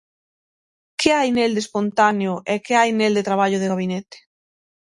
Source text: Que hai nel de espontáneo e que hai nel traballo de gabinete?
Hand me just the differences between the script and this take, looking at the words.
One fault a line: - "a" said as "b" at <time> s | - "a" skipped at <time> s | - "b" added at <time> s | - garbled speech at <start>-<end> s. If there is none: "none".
- "de" added at 3.2 s